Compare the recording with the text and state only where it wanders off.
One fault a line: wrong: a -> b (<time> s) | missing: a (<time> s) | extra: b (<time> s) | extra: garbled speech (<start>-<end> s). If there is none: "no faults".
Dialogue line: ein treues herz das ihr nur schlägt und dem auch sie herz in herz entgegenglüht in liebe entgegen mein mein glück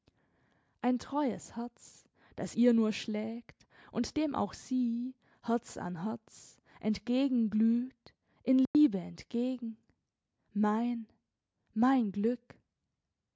wrong: in -> an (5.8 s)